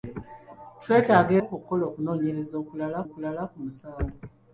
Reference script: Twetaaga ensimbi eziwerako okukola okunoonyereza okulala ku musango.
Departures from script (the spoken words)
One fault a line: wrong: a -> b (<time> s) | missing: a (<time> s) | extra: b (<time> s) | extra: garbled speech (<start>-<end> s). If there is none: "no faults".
missing: ensimbi eziwerako (1.3 s)
extra: okulala (3.1 s)